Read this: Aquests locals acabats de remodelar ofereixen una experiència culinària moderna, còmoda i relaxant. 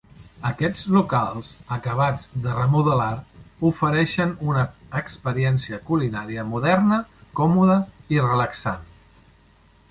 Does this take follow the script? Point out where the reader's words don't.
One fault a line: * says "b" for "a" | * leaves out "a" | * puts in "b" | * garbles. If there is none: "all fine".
all fine